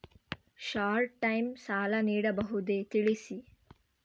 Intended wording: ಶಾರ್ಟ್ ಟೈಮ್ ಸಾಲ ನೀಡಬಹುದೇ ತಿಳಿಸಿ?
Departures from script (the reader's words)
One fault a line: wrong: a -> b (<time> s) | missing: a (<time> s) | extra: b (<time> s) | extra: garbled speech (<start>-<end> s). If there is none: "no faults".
no faults